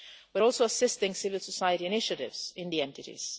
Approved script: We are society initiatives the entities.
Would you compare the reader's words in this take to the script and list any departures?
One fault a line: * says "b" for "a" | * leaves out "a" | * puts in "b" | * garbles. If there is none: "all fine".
* puts in "also assisting civil"
* puts in "in"